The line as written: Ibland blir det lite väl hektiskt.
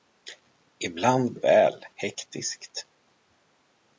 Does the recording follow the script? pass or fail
fail